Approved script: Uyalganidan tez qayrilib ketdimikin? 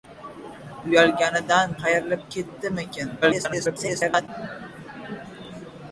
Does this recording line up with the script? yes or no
no